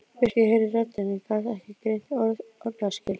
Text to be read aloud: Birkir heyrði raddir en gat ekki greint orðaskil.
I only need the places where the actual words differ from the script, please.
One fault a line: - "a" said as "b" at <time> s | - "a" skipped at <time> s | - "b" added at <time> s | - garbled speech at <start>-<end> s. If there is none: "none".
none